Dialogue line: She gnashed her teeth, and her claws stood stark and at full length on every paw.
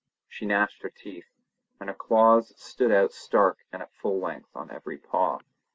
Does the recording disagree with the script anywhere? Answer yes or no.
yes